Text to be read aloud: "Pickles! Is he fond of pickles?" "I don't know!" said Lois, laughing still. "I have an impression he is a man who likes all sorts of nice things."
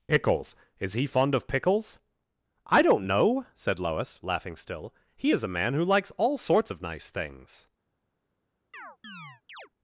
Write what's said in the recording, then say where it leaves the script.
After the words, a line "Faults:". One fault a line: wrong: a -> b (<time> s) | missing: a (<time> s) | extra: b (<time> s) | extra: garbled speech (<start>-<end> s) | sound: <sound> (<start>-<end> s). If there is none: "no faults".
"Pickles! Is he fond of pickles?" "I don't know!" said Lois, laughing still. "he is a man who likes all sorts of nice things."
Faults:
missing: I have an impression (4.9 s)
sound: chirp (8.7-9.7 s)